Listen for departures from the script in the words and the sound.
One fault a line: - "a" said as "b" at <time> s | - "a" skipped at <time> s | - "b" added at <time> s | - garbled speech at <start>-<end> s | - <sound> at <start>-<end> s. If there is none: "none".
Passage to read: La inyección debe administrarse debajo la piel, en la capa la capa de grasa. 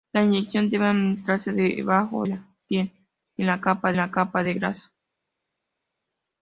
none